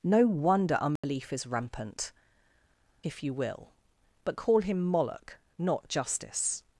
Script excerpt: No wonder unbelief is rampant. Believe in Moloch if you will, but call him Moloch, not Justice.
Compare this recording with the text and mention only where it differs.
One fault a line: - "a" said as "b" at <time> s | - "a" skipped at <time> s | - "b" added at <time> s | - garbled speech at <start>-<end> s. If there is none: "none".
- "Believe in Moloch" skipped at 2.1 s